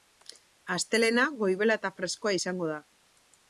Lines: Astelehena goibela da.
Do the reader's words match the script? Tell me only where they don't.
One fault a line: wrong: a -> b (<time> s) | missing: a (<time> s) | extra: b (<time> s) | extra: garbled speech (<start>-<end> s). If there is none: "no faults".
extra: eta freskoa izango (1.8 s)